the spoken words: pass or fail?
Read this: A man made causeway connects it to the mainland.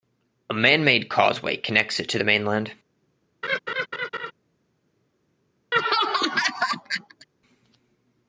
pass